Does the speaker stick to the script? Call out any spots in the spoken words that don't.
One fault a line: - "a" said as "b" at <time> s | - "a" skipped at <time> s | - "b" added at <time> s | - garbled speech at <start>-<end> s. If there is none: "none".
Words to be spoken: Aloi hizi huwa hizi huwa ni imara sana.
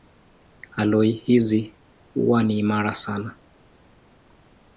- "hizi huwa" skipped at 2.4 s